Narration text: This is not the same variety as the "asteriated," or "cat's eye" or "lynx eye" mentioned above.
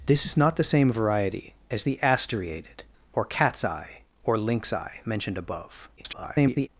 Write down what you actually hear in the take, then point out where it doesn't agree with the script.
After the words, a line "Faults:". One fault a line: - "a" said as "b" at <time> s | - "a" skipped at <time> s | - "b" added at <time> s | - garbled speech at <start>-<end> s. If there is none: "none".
This is not the same variety as the "asteriated," or "cat's eye" or "lynx eye" mentioned above. [garbled]
Faults:
- garbled speech at 6.0-6.7 s